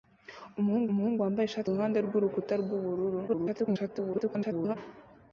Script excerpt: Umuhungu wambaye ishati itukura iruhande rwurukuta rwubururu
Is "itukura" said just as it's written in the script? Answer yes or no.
no